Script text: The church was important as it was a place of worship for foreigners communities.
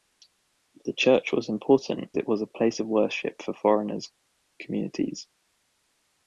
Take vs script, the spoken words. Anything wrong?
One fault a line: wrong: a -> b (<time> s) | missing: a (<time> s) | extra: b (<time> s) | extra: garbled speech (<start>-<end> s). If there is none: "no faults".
missing: as (2.1 s)